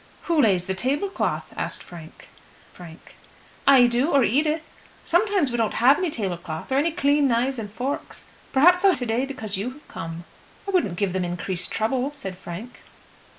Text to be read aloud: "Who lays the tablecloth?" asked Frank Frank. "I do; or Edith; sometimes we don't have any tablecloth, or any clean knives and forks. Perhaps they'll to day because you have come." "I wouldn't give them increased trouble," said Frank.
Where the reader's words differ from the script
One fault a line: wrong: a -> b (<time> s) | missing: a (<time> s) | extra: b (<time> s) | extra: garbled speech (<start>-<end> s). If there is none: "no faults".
no faults